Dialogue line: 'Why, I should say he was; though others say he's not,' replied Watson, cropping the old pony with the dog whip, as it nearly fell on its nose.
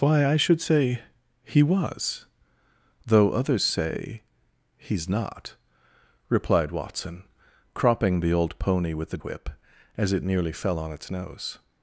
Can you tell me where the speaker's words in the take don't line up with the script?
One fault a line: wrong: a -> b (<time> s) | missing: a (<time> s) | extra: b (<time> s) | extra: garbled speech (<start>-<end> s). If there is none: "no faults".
missing: dog (9.2 s)